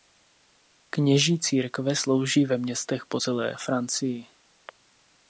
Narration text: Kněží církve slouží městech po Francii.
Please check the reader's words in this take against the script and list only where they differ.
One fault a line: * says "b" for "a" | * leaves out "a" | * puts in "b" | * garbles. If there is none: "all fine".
* puts in "ve"
* puts in "celé"